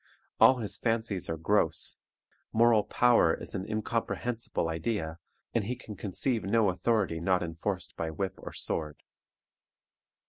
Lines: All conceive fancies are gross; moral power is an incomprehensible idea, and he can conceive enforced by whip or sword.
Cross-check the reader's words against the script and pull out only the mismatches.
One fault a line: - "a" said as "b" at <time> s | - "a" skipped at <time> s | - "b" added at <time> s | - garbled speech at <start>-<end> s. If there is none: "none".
- "conceive" said as "his" at 0.6 s
- "no authority not" added at 6.4 s